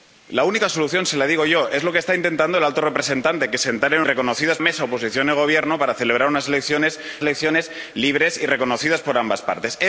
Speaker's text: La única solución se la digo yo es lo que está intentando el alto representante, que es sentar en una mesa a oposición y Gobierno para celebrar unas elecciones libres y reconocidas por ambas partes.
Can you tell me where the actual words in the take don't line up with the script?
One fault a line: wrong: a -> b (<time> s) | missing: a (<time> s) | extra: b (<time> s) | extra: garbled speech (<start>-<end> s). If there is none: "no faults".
wrong: una -> reconocidas (4.0 s)
extra: elecciones (7.2 s)